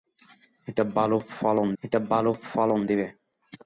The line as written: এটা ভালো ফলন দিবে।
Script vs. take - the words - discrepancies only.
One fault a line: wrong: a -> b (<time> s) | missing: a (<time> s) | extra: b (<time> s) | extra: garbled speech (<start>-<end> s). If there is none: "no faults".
extra: এটা ভালো ফলন (1.8 s)